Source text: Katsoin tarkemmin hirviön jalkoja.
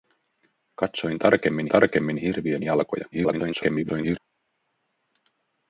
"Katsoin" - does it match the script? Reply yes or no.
yes